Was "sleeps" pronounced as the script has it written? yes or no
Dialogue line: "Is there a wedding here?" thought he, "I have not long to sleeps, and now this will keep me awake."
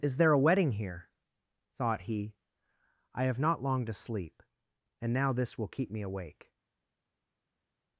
no